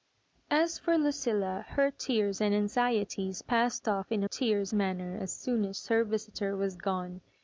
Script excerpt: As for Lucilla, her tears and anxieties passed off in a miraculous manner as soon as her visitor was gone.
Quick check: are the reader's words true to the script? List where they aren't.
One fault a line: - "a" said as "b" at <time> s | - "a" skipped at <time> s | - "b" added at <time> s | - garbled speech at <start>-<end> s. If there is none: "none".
- "miraculous" said as "tears" at 4.2 s